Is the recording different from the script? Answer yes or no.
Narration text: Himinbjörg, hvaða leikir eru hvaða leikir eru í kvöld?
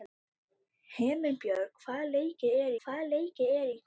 no